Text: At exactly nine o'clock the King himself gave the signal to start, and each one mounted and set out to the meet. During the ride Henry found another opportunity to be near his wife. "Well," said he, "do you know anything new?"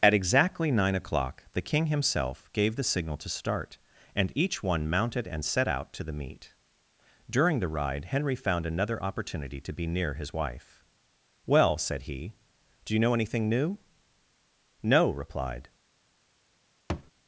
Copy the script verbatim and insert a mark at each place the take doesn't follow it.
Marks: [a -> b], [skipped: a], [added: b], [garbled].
At exactly nine o'clock the King himself gave the signal to start, and each one mounted and set out to the meet. During the ride Henry found another opportunity to be near his wife. "Well," said he, "do you know anything new?" [added: No replied]